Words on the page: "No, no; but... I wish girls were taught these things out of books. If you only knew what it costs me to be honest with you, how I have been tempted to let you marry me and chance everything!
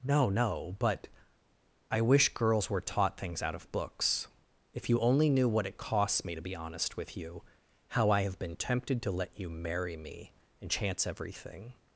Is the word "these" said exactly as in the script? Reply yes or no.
no